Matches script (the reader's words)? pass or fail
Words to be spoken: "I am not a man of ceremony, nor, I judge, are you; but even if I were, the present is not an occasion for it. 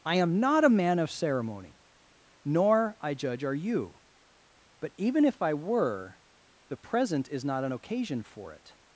pass